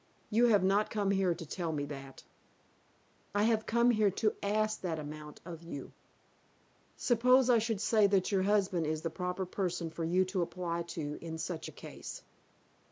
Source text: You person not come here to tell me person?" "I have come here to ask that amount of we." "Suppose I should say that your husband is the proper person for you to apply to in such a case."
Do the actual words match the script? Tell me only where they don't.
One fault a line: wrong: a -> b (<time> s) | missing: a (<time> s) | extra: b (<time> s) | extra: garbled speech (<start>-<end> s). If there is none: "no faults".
wrong: person -> have (0.5 s)
wrong: person -> that (1.9 s)
wrong: we -> you (5.6 s)